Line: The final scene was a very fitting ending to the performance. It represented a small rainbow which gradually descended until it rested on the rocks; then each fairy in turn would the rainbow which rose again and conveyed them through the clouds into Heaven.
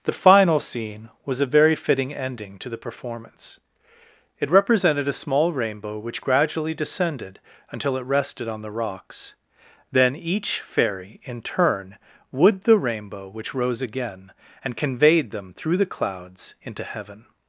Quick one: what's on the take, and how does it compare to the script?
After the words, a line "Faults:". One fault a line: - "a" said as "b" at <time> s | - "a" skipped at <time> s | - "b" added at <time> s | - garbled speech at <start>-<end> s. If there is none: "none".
The final scene was a very fitting ending to the performance. It represented a small rainbow which gradually descended until it rested on the rocks; then each fairy in turn would the rainbow which rose again and conveyed them through the clouds into Heaven.
Faults:
none